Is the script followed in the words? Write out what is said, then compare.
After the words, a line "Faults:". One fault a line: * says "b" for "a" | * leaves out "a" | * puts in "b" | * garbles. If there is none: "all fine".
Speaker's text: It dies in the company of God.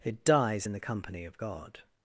It dies in the company of God.
Faults:
all fine